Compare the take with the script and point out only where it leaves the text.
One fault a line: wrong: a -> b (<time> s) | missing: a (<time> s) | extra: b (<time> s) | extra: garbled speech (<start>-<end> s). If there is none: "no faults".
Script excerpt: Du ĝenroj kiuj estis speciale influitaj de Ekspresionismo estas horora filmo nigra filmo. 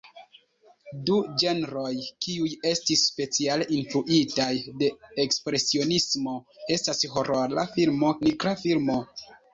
no faults